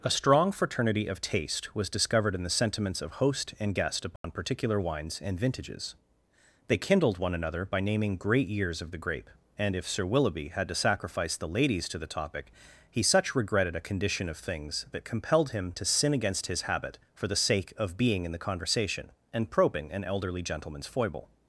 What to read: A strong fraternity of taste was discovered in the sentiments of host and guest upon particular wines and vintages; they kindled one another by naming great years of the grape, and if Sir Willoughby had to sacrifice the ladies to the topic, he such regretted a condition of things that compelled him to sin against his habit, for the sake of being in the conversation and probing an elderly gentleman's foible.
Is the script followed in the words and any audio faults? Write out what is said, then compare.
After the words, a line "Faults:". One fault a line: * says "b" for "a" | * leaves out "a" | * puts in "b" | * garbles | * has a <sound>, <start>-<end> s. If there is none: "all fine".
A strong fraternity of taste was discovered in the sentiments of host and guest upon particular wines and vintages; they kindled one another by naming great years of the grape, and if Sir Willoughby had to sacrifice the ladies to the topic, he such regretted a condition of things that compelled him to sin against his habit, for the sake of being in the conversation and probing an elderly gentleman's foible.
Faults:
* has a dropout, 4.2-4.2 s